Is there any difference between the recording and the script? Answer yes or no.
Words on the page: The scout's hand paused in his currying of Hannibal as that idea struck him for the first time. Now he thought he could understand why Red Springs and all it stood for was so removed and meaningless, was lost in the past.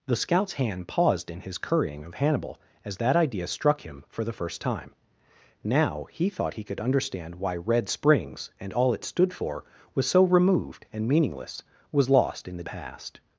no